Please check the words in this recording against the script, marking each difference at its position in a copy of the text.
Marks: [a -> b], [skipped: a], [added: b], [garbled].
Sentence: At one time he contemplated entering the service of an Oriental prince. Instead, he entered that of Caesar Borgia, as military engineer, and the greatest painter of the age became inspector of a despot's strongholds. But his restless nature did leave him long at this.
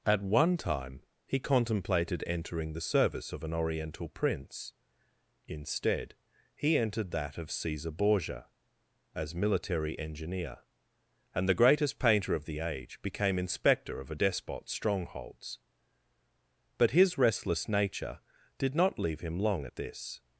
At one time he contemplated entering the service of an Oriental prince. Instead, he entered that of Caesar Borgia, as military engineer, and the greatest painter of the age became inspector of a despot's strongholds. But his restless nature did [added: not] leave him long at this.